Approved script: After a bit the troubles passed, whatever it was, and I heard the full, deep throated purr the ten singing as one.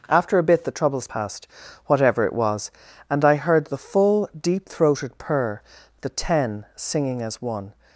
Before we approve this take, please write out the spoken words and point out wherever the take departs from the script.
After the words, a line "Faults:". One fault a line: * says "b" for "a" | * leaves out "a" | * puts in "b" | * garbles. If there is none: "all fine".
After a bit the troubles passed, whatever it was, and I heard the full, deep throated purr the ten singing as one.
Faults:
all fine